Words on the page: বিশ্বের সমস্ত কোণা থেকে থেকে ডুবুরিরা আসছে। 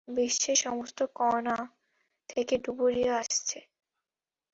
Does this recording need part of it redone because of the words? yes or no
yes